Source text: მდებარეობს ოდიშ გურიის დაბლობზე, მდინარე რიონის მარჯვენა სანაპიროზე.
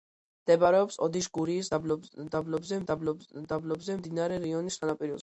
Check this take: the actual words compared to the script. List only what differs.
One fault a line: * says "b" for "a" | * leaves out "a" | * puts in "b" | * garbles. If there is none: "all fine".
* puts in "დაბლობზე"
* leaves out "მარჯვენა"